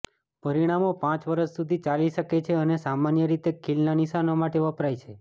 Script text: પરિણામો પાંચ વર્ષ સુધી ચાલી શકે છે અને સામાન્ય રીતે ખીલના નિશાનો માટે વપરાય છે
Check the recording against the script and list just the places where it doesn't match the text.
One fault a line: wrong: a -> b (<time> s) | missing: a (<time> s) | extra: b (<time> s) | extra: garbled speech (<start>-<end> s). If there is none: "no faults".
no faults